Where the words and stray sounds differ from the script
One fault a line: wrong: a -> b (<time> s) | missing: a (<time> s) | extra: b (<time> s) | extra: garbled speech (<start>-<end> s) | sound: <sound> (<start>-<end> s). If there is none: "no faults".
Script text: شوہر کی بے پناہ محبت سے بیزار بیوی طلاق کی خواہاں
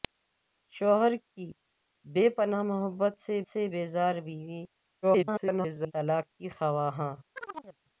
extra: سے (3.5 s)
extra: garbled speech (5.0-5.9 s)
sound: chirp (7.4-7.8 s)